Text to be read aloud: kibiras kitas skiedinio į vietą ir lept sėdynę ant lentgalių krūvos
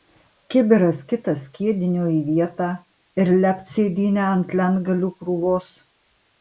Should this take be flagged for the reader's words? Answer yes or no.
no